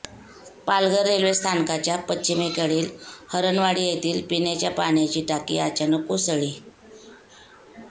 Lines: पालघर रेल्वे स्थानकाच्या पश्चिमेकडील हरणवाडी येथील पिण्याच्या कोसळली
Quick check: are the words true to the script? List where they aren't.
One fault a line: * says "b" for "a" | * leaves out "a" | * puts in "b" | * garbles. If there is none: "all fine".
* puts in "पाण्याची टाकी अचानक"